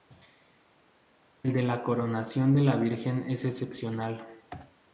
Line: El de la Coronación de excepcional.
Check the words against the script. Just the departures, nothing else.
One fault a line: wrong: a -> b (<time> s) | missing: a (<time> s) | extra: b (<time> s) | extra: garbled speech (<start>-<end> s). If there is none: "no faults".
extra: la Virgen es (2.6 s)